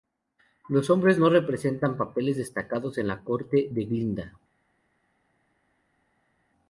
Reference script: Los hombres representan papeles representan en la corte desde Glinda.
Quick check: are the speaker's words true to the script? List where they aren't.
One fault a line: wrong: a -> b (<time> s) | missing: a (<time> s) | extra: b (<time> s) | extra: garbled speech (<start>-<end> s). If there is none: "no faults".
extra: no (1.2 s)
wrong: representan -> destacados (2.4 s)
wrong: desde -> de (3.7 s)